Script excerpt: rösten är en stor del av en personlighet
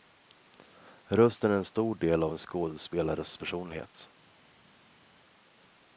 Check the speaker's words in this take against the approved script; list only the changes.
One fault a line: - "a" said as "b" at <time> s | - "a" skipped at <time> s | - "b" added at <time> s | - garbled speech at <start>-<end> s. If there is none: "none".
- "skådespelares" added at 2.4 s